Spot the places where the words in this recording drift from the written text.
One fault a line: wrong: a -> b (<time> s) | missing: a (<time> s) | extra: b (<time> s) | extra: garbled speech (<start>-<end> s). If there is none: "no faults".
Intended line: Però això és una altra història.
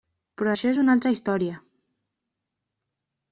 no faults